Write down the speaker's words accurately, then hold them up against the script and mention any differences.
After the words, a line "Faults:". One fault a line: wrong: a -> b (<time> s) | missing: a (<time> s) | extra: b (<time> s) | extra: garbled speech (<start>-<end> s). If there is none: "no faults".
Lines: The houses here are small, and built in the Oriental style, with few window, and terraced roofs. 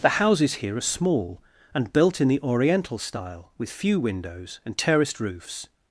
The houses here are small, and built in the Oriental style, with few windows, and terraced roofs.
Faults:
wrong: window -> windows (4.0 s)